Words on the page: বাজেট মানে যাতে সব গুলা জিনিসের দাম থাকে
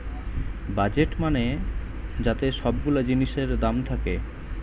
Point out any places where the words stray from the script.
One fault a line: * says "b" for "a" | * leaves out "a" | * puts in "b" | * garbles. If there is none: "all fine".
all fine